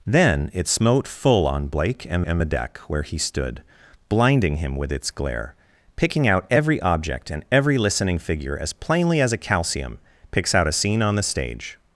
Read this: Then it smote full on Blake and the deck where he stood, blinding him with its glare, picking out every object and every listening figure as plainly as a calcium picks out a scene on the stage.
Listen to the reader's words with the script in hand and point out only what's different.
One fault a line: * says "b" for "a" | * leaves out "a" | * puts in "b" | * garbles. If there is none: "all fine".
* puts in "and"